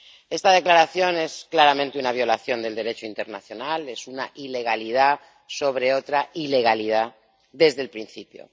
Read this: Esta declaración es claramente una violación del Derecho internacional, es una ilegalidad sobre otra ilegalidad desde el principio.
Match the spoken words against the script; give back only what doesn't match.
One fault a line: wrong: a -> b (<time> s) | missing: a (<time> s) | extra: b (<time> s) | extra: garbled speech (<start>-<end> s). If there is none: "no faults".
no faults